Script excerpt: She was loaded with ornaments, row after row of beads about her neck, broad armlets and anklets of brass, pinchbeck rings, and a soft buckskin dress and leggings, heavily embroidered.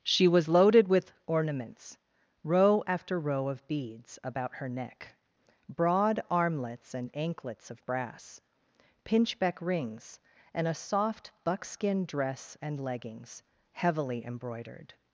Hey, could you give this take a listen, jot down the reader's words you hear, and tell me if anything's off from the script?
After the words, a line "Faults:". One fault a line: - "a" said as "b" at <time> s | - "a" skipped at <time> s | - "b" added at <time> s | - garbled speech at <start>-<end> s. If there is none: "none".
She was loaded with ornaments, row after row of beads about her neck, broad armlets and anklets of brass, pinchbeck rings, and a soft buckskin dress and leggings, heavily embroidered.
Faults:
none